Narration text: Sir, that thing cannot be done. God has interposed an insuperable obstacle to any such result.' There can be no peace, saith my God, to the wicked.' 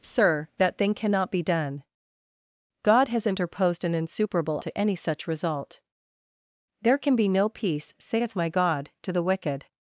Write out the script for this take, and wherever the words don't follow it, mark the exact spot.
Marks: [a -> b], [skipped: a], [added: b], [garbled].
Sir, that thing cannot be done. God has interposed an insuperable [skipped: obstacle] to any such result.' There can be no peace, saith my God, to the wicked.'